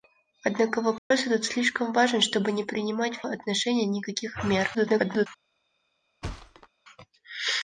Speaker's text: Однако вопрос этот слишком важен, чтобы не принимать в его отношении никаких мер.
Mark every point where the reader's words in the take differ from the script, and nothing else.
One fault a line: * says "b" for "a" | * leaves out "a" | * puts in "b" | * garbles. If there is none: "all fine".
* leaves out "его"
* garbles